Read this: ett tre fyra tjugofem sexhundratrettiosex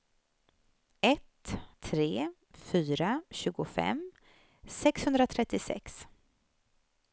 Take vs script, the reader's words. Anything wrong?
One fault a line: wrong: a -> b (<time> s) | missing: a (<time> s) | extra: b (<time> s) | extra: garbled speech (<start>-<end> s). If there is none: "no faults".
no faults